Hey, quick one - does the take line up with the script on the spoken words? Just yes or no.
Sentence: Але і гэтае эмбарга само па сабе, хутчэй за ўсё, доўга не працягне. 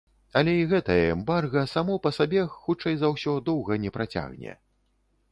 yes